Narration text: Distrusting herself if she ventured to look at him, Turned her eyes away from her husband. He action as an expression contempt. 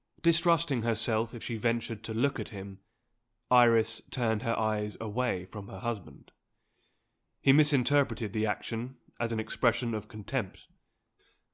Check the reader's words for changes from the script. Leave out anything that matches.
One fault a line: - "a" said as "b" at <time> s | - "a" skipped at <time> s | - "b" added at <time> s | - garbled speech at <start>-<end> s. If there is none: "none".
- "Iris" added at 3.5 s
- "misinterpreted the" added at 7.5 s
- "of" added at 9.9 s